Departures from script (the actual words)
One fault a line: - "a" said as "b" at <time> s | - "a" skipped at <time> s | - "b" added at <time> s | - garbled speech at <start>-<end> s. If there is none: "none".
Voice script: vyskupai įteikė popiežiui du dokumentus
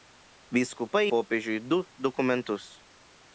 - "įteikė" skipped at 1.0 s